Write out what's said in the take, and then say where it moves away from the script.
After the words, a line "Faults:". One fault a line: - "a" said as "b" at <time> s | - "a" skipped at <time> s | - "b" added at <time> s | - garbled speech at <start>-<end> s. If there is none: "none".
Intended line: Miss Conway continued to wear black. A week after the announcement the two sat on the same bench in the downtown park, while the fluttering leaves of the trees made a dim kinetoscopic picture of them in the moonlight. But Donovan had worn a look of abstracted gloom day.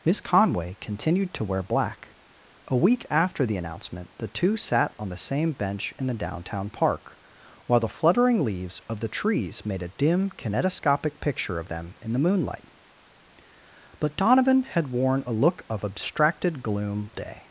Miss Conway continued to wear black. A week after the announcement the two sat on the same bench in the downtown park, while the fluttering leaves of the trees made a dim kinetoscopic picture of them in the moonlight. But Donovan had worn a look of abstracted gloom day.
Faults:
none